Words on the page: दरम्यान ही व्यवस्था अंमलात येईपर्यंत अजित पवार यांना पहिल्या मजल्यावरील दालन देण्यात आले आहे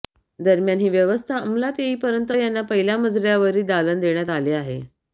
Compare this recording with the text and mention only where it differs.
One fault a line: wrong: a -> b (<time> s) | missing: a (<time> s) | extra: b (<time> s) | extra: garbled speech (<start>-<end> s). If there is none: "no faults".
missing: अजित पवार (2.3 s)